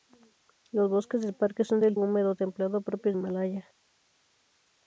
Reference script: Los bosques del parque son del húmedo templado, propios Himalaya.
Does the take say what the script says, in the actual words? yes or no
yes